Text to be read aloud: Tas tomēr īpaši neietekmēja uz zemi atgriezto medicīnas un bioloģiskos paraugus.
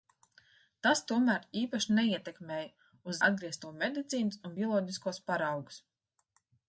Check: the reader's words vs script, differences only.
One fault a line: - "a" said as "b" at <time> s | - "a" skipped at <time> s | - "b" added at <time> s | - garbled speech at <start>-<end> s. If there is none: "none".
- "zemi" skipped at 3.2 s